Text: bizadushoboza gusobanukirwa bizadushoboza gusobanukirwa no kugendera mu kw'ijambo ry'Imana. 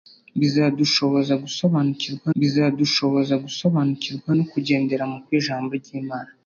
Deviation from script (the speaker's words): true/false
false